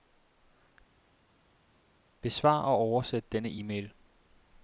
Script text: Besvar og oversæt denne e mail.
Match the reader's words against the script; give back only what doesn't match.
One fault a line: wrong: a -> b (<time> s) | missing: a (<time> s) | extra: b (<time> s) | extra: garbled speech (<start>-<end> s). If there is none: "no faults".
no faults